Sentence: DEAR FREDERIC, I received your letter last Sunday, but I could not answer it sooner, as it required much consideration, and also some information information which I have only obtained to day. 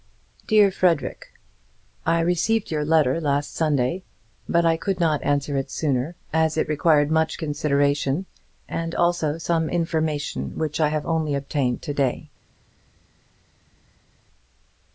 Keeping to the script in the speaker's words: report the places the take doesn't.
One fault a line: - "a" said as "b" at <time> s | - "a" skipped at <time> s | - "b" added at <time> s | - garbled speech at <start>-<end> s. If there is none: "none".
- "information" skipped at 10.5 s